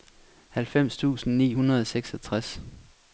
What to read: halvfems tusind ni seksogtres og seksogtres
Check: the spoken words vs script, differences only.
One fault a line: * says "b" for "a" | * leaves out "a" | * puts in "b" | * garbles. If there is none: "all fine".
* says "hundrede" for "seksogtres"